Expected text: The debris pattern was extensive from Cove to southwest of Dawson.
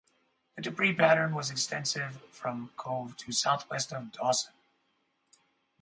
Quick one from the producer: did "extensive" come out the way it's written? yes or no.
yes